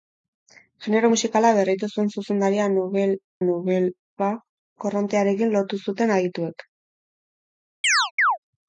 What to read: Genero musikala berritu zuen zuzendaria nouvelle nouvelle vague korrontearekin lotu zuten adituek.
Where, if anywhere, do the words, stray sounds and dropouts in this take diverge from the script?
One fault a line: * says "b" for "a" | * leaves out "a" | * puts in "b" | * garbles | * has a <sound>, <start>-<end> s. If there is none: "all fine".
* has a chirp, 7.8-8.4 s